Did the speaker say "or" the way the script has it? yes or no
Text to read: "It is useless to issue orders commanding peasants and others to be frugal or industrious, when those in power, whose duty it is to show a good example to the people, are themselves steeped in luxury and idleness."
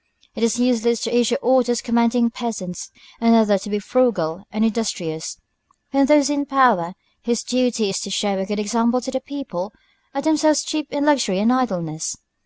no